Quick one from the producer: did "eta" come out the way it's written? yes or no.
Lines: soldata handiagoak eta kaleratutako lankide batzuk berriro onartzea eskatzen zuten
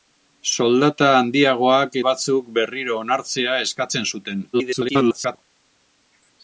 no